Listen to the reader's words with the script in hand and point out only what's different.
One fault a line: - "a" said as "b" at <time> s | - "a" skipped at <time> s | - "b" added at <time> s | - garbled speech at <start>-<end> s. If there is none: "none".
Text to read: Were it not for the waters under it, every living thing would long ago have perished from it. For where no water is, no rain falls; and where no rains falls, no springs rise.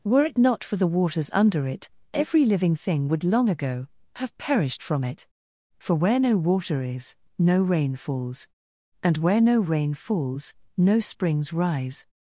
- "rains" said as "rain" at 9.6 s